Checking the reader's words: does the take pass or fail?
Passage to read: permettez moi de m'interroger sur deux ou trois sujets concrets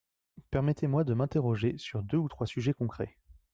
pass